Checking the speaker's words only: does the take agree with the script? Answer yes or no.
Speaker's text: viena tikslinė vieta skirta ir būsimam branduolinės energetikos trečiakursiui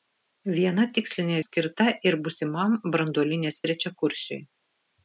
no